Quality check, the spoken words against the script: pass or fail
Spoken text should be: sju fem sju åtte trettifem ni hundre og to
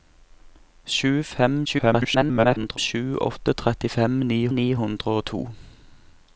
fail